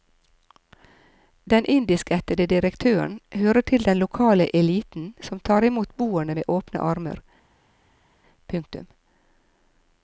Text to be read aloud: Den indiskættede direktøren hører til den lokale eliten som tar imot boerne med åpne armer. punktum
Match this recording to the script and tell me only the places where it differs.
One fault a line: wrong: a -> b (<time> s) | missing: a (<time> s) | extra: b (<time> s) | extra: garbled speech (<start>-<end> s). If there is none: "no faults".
no faults